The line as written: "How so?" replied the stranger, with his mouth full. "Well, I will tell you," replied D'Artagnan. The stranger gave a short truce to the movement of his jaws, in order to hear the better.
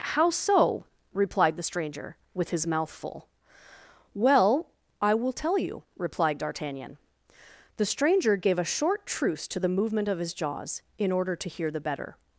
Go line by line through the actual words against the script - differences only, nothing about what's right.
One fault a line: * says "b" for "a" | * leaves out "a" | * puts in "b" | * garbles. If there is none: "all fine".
all fine